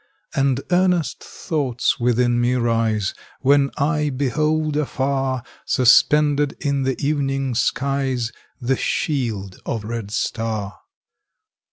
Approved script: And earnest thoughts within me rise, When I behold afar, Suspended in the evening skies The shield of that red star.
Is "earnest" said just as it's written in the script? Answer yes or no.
yes